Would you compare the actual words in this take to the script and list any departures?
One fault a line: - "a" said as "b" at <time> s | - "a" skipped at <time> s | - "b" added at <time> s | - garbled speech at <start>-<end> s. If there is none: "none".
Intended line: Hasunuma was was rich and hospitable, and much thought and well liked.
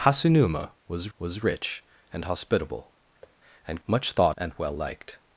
none